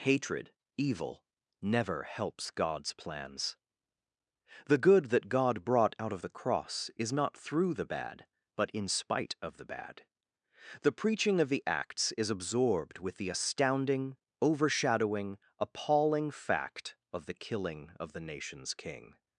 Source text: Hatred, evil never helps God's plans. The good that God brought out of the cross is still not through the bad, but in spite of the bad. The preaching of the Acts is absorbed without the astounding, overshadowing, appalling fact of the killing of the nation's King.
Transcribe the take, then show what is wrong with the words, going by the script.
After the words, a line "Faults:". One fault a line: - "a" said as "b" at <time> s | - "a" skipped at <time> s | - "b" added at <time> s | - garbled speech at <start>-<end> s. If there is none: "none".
Hatred, evil never helps God's plans. The good that God brought out of the cross is not through the bad, but in spite of the bad. The preaching of the Acts is absorbed with the astounding, overshadowing, appalling fact of the killing of the nation's King.
Faults:
- "still" skipped at 7.1 s
- "without" said as "with" at 13.0 s